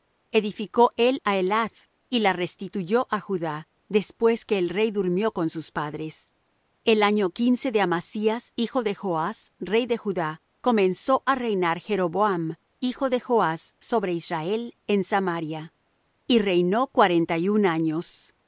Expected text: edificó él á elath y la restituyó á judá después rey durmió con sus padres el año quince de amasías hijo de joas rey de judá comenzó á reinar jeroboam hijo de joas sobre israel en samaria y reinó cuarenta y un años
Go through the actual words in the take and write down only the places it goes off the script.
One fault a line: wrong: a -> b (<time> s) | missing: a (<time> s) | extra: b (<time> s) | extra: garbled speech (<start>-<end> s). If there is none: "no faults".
extra: que el (4.5 s)